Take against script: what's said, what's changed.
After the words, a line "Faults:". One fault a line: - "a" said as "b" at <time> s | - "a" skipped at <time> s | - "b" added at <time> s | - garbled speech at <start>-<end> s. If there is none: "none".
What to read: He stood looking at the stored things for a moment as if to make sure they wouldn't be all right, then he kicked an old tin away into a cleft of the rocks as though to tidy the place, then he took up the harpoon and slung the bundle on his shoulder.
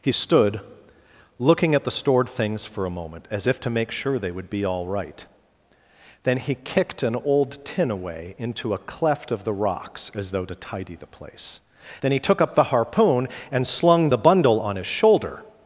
He stood looking at the stored things for a moment as if to make sure they would be all right, then he kicked an old tin away into a cleft of the rocks as though to tidy the place, then he took up the harpoon and slung the bundle on his shoulder.
Faults:
- "wouldn't" said as "would" at 4.3 s